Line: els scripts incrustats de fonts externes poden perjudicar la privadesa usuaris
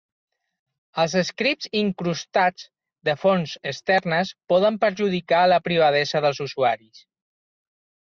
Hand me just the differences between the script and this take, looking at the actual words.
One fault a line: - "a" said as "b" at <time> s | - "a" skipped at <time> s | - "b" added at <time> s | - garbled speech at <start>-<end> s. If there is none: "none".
- "dels" added at 6.3 s